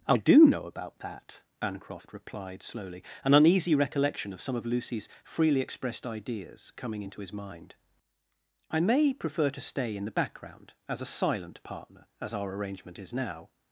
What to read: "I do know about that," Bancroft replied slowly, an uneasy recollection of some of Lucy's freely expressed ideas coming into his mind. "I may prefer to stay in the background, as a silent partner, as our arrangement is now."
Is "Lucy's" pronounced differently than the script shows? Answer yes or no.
no